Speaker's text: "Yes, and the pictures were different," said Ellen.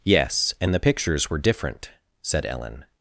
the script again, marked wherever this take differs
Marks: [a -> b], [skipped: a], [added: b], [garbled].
"Yes, and the pictures were different," said Ellen.